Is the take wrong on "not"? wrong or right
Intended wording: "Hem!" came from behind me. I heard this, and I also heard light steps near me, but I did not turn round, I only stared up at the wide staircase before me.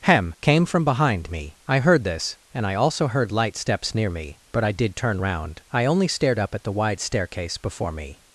wrong